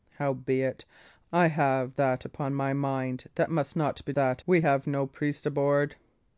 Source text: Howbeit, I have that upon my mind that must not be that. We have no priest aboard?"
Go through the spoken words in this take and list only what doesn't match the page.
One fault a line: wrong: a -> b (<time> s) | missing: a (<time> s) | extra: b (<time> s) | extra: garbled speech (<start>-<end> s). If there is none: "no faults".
no faults